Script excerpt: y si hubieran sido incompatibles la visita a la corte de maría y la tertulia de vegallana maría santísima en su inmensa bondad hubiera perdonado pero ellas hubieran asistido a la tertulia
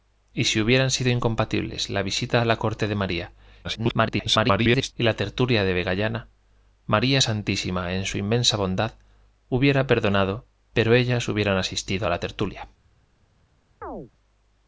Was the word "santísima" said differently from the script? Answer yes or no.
no